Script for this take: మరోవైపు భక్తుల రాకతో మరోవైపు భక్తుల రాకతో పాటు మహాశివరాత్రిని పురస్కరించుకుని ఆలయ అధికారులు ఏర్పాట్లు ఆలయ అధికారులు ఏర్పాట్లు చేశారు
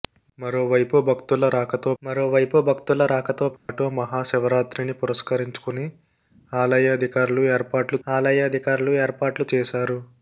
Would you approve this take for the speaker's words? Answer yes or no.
yes